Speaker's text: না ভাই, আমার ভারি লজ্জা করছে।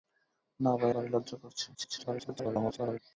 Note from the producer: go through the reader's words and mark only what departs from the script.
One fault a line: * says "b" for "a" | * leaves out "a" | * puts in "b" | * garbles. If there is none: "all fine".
* leaves out "আমার"
* garbles